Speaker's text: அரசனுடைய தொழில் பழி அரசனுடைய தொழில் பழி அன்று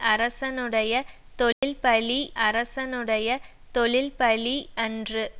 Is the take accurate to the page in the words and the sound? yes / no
no